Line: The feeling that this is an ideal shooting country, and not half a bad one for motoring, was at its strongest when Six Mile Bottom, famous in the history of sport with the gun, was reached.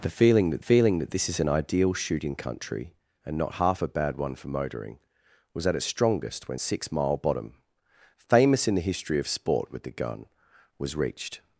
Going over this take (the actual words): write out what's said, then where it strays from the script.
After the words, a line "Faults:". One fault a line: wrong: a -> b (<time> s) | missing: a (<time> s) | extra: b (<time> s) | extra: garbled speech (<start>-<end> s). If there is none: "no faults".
The feeling that feeling that this is an ideal shooting country, and not half a bad one for motoring, was at its strongest when Six Mile Bottom, famous in the history of sport with the gun, was reached.
Faults:
extra: feeling that (0.6 s)